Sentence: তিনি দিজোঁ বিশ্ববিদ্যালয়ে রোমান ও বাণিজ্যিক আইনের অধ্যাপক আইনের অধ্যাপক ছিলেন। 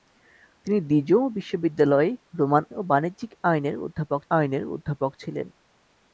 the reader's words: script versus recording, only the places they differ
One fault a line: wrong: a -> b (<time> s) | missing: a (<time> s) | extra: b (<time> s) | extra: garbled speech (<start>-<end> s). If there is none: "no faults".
no faults